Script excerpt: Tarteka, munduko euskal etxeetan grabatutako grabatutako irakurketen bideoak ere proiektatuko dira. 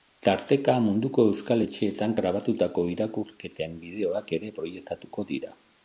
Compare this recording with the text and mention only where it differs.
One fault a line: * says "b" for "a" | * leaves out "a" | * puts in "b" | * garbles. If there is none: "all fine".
* leaves out "grabatutako"